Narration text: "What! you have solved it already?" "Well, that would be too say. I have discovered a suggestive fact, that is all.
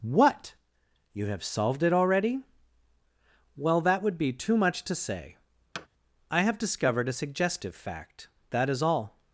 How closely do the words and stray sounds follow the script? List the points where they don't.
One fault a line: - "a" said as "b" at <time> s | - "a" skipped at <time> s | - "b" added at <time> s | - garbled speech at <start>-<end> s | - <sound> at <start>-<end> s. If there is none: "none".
- "much to" added at 4.6 s
- thud at 5.7-5.9 s